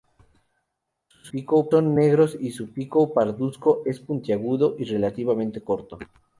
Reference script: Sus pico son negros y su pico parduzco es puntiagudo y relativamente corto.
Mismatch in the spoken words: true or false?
false